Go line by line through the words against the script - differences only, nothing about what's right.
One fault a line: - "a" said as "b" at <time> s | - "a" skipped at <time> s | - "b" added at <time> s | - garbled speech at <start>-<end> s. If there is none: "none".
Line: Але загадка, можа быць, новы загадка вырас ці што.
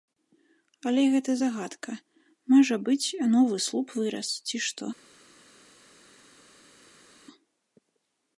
- "гэта" added at 1.1 s
- "загадка" said as "слуп" at 3.7 s